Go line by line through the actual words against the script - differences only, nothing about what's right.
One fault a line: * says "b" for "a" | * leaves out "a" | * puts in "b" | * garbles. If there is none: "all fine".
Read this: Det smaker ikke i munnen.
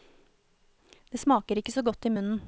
* puts in "så godt"